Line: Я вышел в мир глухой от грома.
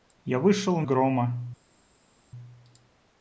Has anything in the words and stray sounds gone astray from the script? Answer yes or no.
yes